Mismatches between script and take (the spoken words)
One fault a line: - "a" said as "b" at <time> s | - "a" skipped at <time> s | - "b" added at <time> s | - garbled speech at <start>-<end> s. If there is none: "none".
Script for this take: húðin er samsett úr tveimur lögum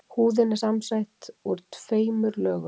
none